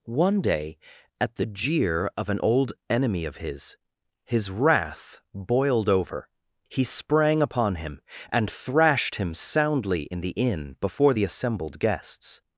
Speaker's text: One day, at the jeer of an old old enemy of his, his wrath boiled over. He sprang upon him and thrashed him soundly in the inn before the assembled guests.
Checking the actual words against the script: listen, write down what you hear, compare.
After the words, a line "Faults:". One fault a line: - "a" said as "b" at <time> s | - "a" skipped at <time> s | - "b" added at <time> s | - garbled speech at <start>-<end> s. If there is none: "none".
One day, at the jeer of an old enemy of his, his wrath boiled over. He sprang upon him and thrashed him soundly in the inn before the assembled guests.
Faults:
- "old" skipped at 2.7 s